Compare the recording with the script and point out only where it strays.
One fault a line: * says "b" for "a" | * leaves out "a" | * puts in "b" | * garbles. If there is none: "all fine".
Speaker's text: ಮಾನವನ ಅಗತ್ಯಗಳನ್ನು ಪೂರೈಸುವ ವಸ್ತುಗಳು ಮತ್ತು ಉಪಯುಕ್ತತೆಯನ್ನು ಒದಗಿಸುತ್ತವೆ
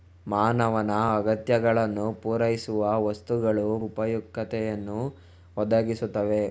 * leaves out "ಮತ್ತು"